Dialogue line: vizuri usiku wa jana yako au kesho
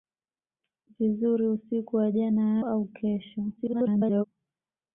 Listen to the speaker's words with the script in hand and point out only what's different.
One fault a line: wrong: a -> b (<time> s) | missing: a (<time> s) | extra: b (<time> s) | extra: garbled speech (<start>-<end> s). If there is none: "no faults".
missing: yako (2.6 s)
extra: garbled speech (3.6-4.2 s)